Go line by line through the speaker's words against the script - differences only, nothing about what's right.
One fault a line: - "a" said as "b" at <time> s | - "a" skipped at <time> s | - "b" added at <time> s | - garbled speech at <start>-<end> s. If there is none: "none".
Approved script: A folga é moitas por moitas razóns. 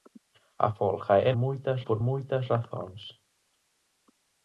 none